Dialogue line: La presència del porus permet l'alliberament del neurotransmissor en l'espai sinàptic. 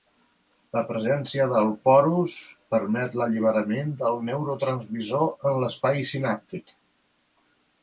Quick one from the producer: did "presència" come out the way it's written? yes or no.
yes